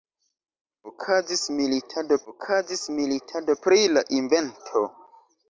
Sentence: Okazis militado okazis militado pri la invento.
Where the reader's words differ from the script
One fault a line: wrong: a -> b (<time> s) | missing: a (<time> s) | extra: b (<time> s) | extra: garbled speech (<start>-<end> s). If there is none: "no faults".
no faults